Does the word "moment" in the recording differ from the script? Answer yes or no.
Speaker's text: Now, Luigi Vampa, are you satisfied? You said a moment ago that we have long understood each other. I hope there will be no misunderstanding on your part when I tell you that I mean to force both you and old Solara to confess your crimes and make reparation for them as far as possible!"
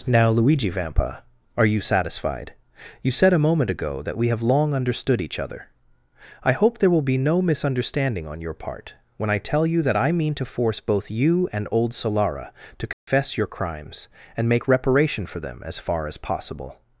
no